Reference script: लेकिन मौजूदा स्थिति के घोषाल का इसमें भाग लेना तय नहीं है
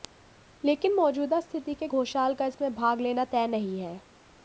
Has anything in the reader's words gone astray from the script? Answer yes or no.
no